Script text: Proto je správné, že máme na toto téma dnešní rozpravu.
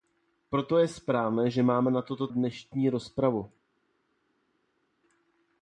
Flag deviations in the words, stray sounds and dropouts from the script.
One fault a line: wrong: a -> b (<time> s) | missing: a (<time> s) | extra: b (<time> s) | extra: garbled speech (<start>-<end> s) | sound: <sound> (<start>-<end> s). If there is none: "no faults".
missing: téma (2.3 s)